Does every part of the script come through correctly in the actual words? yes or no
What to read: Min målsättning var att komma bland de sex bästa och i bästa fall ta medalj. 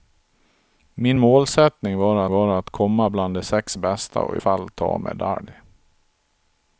no